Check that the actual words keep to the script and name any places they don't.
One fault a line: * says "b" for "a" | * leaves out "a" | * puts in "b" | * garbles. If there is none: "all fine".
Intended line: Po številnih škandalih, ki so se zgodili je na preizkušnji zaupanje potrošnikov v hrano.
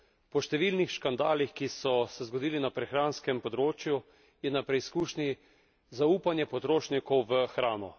* puts in "na prehranskem področju"